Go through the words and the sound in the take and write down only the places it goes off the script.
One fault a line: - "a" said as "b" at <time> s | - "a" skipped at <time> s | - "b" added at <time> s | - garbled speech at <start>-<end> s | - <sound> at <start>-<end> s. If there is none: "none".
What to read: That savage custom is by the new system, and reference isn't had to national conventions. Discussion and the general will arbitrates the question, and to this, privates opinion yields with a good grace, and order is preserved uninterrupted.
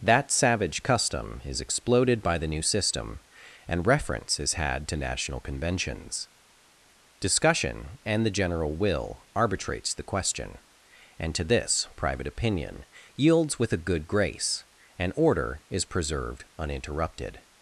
- "exploded" added at 1.6 s
- "isn't" said as "is" at 4.4 s
- "privates" said as "private" at 12.0 s